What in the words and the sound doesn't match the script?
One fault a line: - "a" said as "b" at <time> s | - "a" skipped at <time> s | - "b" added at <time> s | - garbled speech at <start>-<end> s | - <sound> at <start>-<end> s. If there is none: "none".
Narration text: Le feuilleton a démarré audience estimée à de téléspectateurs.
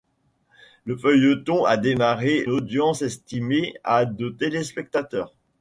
none